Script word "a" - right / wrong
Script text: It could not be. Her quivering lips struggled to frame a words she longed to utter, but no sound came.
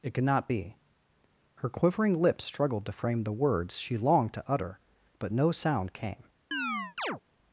wrong